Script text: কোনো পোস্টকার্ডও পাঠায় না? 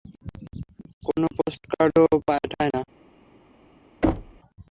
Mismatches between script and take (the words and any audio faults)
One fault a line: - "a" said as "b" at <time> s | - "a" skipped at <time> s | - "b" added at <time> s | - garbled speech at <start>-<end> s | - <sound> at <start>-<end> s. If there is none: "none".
- thud at 4.0-4.4 s